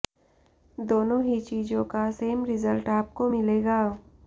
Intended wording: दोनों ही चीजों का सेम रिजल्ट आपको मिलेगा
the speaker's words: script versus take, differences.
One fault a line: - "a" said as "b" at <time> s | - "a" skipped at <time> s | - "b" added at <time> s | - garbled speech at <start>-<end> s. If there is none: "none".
none